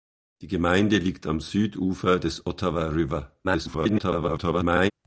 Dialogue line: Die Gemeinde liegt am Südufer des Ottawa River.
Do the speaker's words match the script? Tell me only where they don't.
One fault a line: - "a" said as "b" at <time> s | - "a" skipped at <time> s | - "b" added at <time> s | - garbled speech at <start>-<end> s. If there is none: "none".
- garbled speech at 3.4-4.9 s